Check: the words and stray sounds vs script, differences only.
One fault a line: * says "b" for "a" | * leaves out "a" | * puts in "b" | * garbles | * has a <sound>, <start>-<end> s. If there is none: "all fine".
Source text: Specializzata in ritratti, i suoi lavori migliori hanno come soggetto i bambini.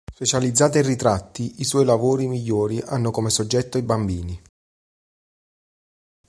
all fine